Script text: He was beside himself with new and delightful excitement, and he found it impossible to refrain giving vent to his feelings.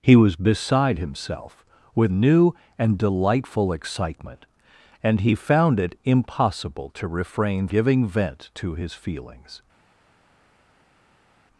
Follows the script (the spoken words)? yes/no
yes